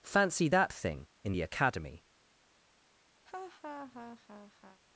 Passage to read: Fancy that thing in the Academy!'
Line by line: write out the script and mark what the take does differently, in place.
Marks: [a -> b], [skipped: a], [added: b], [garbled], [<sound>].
Fancy that thing in the Academy!' [laugh]